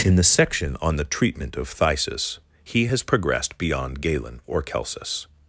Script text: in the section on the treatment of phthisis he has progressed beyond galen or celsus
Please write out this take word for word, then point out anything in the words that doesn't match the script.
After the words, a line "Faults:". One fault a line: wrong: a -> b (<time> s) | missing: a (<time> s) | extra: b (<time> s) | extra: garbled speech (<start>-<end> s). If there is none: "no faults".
in the section on the treatment of phthisis he has progressed beyond galen or celsus
Faults:
no faults